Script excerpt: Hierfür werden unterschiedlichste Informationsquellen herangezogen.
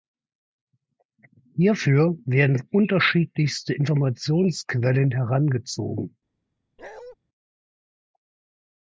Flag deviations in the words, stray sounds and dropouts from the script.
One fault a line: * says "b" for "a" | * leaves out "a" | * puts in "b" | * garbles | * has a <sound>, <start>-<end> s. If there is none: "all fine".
* has a bark, 6.8-7.2 s